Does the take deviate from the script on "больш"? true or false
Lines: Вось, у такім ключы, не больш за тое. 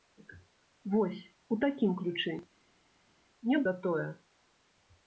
true